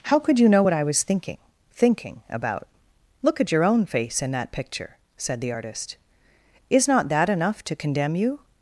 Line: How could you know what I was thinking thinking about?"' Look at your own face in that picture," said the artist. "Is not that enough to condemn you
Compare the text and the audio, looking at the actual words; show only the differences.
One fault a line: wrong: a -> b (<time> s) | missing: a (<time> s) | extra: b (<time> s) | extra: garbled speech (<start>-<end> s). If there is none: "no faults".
no faults